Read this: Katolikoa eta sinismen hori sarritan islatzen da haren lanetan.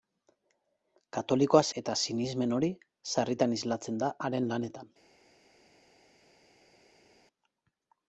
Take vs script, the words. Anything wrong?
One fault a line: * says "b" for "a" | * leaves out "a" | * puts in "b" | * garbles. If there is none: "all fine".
all fine